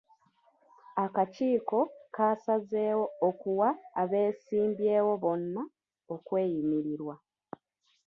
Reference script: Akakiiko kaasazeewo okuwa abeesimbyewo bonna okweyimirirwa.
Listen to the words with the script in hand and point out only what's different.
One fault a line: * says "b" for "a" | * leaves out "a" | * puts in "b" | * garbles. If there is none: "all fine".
all fine